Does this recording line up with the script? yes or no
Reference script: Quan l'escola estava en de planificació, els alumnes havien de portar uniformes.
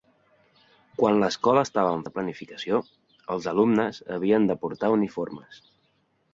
yes